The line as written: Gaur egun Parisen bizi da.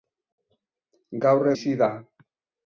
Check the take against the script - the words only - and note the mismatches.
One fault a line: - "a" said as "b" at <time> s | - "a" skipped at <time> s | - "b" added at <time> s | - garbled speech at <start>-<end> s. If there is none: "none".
- "egun Parisen" skipped at 1.5 s